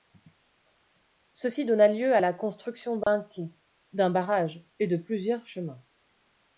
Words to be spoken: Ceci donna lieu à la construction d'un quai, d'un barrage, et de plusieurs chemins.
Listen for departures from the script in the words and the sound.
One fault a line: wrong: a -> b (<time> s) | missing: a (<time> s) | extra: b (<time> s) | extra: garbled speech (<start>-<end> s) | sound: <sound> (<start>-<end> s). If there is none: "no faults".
sound: dropout (3.0-3.1 s)